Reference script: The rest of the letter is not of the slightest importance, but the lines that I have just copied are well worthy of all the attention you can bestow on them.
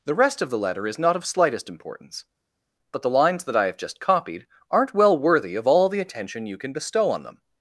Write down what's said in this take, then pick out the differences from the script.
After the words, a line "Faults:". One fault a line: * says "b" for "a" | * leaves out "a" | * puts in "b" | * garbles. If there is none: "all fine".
The rest of the letter is not of slightest importance, but the lines that I have just copied aren't well worthy of all the attention you can bestow on them.
Faults:
* leaves out "the"
* says "aren't" for "are"